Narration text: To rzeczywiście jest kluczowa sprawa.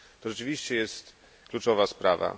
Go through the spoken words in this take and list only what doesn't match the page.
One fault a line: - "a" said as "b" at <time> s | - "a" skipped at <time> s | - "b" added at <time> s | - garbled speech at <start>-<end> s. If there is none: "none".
none